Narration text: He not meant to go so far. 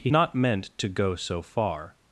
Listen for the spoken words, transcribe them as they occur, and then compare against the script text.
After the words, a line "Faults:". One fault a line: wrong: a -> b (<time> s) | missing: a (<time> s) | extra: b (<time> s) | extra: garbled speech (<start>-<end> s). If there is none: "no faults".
He not meant to go so far.
Faults:
no faults